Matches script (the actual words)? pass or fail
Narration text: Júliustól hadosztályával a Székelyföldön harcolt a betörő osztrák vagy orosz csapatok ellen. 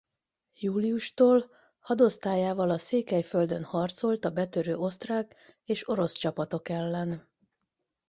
fail